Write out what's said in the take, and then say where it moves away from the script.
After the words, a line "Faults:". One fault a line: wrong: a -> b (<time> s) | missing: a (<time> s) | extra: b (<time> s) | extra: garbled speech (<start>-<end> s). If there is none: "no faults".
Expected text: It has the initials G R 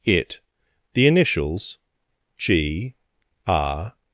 It the initials G R
Faults:
missing: has (0.4 s)